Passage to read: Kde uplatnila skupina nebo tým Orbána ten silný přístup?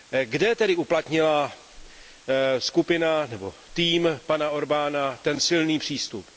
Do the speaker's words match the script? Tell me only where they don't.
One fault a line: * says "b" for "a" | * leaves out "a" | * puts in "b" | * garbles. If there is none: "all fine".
* puts in "tedy"
* puts in "pana"